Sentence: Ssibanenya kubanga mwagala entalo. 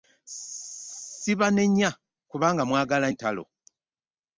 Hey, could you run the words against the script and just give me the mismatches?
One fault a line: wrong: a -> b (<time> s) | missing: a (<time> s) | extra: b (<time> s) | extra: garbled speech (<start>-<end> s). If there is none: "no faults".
no faults